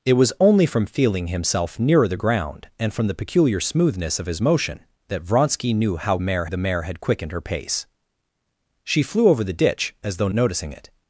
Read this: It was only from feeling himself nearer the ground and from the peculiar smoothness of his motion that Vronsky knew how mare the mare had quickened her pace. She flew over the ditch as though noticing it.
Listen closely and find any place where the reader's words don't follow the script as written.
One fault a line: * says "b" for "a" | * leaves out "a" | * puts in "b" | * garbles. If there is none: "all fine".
all fine